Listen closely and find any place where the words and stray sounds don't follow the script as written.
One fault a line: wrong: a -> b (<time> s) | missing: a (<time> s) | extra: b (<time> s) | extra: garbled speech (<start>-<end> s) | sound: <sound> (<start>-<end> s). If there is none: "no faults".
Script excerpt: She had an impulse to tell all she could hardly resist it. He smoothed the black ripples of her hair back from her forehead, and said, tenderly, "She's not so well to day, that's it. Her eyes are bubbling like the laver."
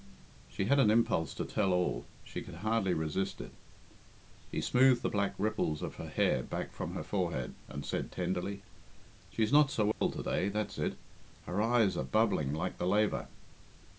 sound: dropout (9.9-10.0 s)